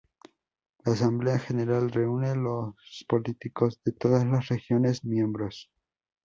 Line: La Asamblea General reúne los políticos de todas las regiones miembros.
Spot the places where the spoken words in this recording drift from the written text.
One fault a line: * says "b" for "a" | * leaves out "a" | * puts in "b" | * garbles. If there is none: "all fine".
all fine